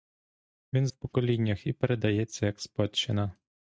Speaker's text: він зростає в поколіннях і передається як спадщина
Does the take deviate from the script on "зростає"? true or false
true